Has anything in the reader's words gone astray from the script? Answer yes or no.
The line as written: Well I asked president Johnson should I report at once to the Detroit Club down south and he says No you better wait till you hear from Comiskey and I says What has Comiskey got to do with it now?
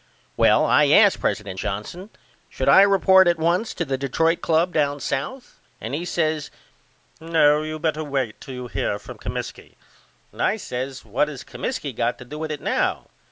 no